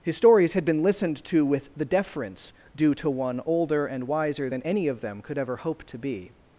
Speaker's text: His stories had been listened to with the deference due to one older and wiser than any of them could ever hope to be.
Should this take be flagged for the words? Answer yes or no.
no